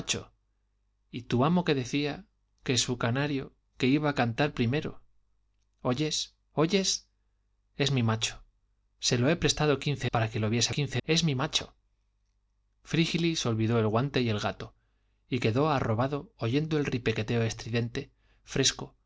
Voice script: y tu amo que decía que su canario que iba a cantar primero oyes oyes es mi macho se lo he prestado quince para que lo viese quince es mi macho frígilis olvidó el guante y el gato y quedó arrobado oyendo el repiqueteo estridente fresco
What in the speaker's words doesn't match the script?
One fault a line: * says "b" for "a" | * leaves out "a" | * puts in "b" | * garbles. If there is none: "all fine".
all fine